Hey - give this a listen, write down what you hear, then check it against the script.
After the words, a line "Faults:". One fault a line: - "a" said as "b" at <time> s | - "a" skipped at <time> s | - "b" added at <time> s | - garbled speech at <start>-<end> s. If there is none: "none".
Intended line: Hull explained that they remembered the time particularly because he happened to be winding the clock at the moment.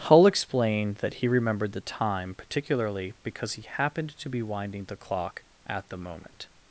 Hull explained that he remembered the time particularly because he happened to be winding the clock at the moment.
Faults:
- "they" said as "he" at 1.1 s